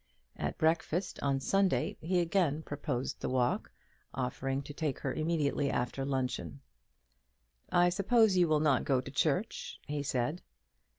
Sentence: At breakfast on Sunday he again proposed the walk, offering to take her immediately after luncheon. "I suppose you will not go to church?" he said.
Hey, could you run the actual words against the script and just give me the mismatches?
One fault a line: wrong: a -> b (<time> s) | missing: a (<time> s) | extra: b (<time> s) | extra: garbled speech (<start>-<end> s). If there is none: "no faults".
no faults